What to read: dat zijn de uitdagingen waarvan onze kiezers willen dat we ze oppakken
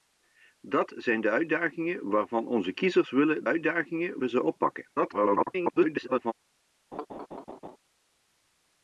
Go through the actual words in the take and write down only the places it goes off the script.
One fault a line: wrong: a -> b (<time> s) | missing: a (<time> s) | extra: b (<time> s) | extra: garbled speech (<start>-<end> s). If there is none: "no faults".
wrong: dat -> uitdagingen (3.4 s)
extra: garbled speech (5.0-6.3 s)